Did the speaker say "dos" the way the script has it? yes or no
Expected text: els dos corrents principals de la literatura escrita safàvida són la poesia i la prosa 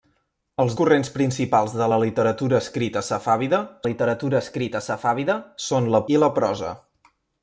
no